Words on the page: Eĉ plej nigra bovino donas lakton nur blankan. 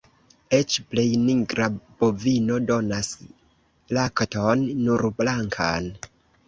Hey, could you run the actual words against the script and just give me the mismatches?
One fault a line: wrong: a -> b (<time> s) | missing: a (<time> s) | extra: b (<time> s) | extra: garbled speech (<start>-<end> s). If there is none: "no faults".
no faults